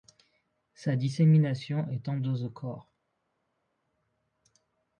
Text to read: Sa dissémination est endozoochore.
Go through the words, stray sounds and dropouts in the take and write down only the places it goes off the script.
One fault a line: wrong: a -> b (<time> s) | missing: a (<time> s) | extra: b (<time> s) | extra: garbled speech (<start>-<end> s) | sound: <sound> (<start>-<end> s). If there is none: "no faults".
no faults